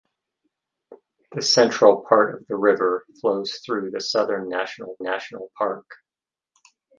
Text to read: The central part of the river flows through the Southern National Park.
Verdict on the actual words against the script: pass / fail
fail